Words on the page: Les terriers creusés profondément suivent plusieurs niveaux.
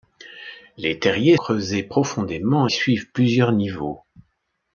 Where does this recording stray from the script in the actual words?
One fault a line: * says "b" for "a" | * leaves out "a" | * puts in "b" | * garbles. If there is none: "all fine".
all fine